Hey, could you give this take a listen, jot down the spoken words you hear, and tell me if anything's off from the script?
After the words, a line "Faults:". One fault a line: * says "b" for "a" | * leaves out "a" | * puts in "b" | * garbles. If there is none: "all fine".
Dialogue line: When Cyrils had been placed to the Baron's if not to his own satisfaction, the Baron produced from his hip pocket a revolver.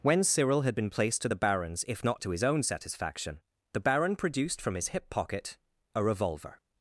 When Cyril had been placed to the Baron's if not to his own satisfaction, the Baron produced from his hip pocket a revolver.
Faults:
* says "Cyril" for "Cyrils"